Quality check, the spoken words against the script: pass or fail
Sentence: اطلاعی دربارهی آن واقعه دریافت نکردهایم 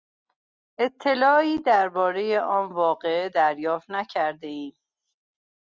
pass